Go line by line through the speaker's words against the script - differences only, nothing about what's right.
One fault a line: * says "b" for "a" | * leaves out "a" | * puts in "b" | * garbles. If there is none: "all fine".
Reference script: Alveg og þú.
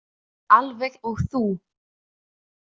all fine